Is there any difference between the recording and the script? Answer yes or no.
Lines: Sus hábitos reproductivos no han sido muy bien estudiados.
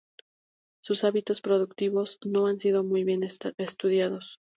no